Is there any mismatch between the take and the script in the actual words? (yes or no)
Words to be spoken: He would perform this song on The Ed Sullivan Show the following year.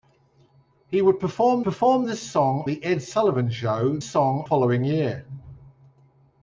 yes